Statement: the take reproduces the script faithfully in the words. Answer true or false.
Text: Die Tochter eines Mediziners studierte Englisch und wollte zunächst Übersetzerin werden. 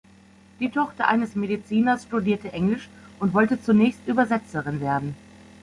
true